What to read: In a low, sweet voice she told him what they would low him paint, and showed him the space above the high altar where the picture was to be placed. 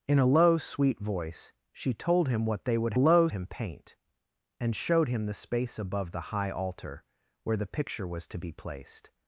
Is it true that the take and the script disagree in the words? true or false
false